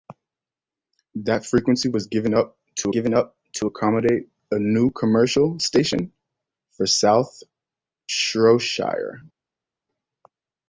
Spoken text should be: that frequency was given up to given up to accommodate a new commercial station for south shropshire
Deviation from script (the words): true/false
false